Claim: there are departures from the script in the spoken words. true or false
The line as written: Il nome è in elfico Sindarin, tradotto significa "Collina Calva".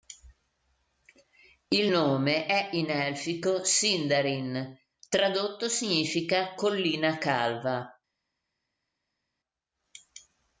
false